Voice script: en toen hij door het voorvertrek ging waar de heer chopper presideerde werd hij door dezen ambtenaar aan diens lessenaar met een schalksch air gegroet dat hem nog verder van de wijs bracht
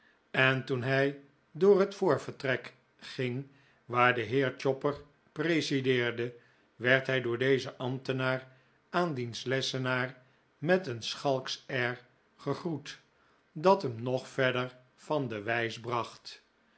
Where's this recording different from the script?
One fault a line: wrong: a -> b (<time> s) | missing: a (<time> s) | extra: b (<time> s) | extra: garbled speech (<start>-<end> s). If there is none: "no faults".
no faults